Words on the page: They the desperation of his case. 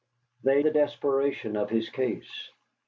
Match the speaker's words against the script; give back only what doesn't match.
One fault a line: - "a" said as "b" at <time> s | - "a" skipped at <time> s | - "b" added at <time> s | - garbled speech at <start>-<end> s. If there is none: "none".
none